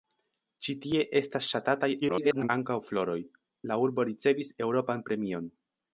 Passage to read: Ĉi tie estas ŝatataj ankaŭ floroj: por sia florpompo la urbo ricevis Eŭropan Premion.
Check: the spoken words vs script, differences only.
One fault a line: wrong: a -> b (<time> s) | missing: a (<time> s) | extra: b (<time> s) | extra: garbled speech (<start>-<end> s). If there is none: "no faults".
extra: garbled speech (2.0-2.5 s)
missing: por sia florpompo (3.2 s)